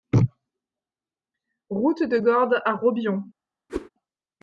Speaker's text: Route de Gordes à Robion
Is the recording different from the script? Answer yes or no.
no